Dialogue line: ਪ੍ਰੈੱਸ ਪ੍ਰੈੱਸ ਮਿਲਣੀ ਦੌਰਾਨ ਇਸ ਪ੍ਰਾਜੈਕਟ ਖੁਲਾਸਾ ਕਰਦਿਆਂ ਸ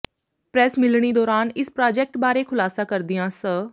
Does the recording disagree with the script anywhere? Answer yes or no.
yes